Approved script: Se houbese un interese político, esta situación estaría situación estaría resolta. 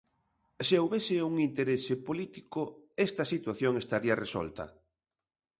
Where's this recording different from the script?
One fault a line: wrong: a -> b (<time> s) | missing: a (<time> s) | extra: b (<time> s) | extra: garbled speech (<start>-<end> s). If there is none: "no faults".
missing: situación estaría (4.2 s)